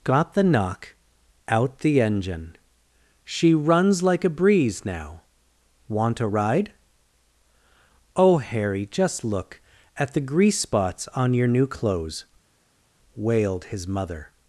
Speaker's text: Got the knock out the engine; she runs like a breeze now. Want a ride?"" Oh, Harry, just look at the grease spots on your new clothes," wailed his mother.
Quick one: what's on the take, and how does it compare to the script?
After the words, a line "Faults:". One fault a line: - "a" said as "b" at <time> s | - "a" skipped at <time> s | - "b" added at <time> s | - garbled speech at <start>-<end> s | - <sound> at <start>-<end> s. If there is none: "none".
Got the knock out the engine; she runs like a breeze now. Want a ride?"" Oh, Harry, just look at the grease spots on your new clothes," wailed his mother.
Faults:
none